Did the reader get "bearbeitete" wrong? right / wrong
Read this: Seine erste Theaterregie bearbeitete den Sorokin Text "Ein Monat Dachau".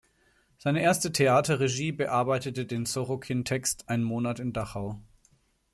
right